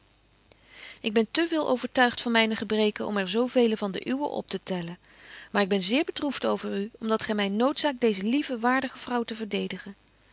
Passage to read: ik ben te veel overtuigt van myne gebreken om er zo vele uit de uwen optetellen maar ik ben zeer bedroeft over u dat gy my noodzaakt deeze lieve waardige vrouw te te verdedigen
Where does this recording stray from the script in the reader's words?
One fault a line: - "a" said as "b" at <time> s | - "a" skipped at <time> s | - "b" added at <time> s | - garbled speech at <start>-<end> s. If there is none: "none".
- "uit" said as "van" at 3.8 s
- "om" added at 7.0 s
- "te" skipped at 9.3 s